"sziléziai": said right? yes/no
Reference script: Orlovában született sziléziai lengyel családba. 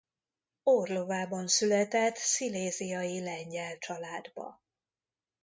yes